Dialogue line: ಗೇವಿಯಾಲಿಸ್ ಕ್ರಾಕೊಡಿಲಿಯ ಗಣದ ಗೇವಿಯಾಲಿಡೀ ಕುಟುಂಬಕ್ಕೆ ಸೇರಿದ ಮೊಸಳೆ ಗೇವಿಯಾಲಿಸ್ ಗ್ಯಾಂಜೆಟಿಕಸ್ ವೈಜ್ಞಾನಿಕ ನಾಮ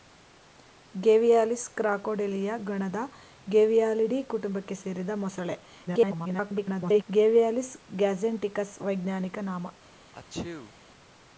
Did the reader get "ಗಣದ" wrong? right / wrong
right